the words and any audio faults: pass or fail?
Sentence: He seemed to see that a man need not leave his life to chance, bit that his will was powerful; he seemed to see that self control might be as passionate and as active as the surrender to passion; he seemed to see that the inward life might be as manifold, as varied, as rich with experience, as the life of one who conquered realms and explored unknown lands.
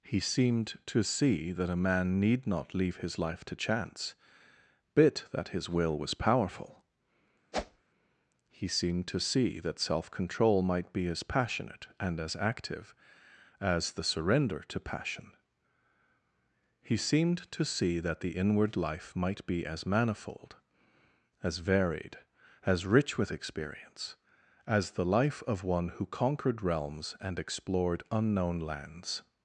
fail